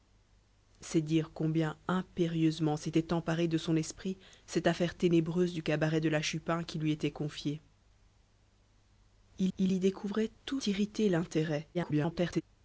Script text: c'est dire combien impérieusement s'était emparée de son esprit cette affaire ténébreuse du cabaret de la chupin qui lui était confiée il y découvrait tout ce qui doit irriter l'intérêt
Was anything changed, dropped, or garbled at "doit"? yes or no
yes